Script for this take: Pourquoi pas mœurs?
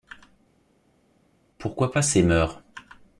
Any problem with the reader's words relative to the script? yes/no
yes